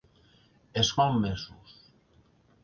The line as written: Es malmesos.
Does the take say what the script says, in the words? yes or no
yes